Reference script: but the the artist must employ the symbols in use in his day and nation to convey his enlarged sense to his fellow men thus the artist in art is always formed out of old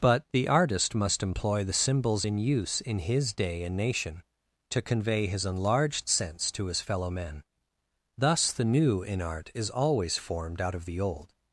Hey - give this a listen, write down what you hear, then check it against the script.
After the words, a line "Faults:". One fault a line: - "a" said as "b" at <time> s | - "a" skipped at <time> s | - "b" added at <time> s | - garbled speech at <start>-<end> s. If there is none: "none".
but the artist must employ the symbols in use in his day and nation to convey his enlarged sense to his fellow men thus the new in art is always formed out of the old
Faults:
- "the" skipped at 0.5 s
- "artist" said as "new" at 8.6 s
- "the" added at 10.8 s